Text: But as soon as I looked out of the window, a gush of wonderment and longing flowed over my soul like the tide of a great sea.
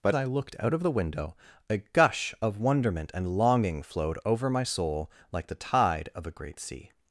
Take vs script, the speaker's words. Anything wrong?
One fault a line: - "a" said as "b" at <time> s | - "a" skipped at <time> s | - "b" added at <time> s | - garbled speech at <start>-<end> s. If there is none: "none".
- "as soon as" skipped at 0.1 s